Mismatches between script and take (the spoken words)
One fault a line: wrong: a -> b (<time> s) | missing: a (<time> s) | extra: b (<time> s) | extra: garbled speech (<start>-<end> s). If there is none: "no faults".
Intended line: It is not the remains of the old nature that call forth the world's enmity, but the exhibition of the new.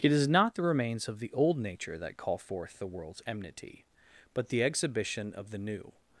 no faults